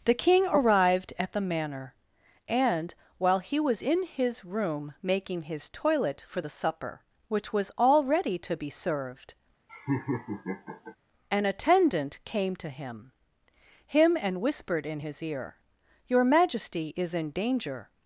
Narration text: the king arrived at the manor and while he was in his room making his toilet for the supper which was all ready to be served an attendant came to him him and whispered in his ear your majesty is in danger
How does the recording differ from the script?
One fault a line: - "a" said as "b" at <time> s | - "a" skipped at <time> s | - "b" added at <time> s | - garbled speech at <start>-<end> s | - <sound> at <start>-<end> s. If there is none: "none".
- laugh at 9.7-11.0 s